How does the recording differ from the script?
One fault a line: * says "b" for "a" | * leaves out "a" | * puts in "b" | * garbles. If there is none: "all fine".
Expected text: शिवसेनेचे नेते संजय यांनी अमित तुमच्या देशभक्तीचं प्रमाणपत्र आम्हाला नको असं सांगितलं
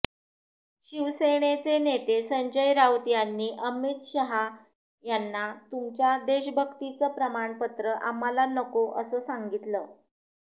* puts in "राऊत"
* puts in "शहा यांना"